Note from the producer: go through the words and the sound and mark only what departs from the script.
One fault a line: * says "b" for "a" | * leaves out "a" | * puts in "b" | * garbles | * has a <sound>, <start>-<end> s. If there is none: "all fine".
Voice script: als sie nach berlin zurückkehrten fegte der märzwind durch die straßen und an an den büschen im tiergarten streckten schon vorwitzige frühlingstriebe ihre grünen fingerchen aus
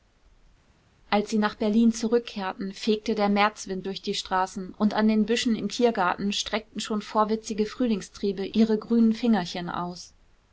* leaves out "an"